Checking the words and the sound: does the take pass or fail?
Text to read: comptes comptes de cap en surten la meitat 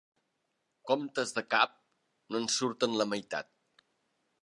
fail